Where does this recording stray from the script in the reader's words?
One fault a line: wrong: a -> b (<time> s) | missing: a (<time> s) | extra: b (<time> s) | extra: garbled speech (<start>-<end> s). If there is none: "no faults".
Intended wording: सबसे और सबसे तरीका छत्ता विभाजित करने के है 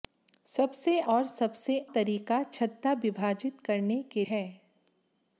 no faults